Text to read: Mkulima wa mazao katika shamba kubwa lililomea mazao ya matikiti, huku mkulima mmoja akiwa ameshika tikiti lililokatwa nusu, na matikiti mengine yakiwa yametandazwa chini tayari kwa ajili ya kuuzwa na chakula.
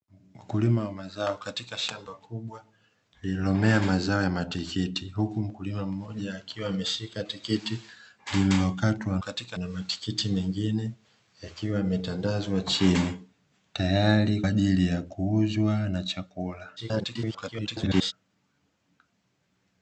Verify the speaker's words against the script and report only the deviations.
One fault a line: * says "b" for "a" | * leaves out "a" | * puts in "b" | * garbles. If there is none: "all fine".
* says "katika" for "nusu"
* leaves out "kwa"
* garbles